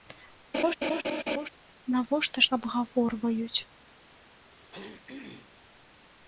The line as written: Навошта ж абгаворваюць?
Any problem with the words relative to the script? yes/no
no